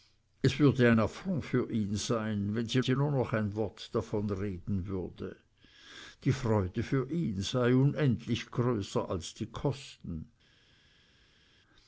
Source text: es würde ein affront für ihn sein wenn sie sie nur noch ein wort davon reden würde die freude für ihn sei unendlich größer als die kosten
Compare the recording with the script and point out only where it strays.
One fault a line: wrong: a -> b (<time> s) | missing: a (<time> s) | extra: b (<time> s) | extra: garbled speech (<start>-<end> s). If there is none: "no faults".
no faults